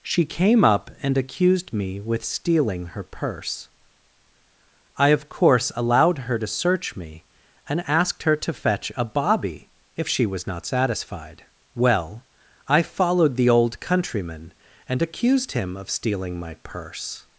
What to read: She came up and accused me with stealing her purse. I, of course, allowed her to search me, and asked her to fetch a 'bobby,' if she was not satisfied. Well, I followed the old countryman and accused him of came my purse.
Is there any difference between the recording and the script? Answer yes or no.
yes